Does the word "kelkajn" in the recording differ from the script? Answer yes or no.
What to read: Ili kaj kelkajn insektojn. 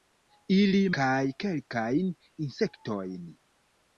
no